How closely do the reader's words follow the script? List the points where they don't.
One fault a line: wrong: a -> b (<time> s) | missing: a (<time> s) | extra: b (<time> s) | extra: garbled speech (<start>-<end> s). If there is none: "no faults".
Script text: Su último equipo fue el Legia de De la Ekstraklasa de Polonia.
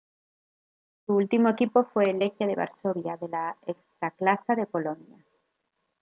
extra: Varsovia (2.5 s)